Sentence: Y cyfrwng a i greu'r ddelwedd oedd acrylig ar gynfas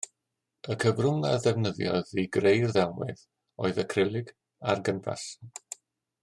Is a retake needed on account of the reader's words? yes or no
yes